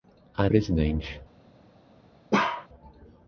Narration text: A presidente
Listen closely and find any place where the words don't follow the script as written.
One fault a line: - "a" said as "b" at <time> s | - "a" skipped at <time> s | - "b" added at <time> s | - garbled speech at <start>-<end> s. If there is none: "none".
none